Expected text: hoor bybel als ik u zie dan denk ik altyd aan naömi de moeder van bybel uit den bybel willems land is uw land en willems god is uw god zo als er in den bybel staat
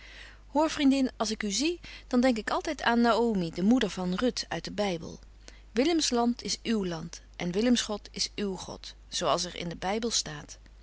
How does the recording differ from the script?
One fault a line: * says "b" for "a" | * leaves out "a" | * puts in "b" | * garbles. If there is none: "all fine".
* says "vriendin" for "bybel"
* says "ruth" for "bybel"